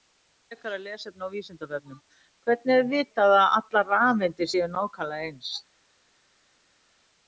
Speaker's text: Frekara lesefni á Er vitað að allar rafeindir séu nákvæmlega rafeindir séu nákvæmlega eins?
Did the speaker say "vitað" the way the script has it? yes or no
yes